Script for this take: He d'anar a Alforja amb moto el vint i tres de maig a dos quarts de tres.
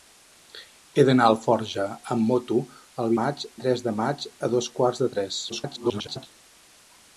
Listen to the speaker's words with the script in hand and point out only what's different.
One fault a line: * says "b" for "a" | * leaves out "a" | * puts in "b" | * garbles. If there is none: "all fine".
* says "maig" for "vint"
* garbles